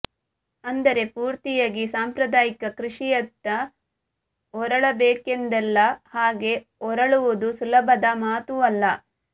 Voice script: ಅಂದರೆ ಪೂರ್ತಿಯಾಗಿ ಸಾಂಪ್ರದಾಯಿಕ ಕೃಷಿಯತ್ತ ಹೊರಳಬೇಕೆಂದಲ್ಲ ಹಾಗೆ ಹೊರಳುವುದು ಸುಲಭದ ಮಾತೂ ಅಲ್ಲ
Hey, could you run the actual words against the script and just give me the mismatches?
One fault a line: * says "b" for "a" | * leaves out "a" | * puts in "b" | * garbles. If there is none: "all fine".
all fine